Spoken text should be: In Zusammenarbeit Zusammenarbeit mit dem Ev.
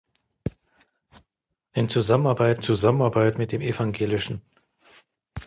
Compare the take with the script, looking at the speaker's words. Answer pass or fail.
pass